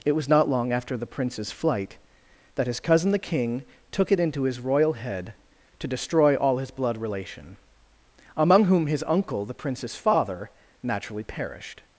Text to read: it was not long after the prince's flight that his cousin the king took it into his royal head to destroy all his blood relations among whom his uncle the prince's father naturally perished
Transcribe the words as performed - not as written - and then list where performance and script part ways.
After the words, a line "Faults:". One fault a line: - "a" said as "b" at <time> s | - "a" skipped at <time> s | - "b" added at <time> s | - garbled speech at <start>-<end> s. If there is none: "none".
it was not long after the prince's flight that his cousin the king took it into his royal head to destroy all his blood relation among whom his uncle the prince's father naturally perished
Faults:
- "relations" said as "relation" at 7.0 s